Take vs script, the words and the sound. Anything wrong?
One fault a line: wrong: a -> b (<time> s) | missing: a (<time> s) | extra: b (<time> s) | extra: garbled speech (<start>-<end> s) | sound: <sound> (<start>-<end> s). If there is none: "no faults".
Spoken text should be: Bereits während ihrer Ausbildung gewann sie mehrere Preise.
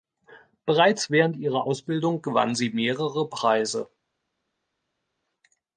no faults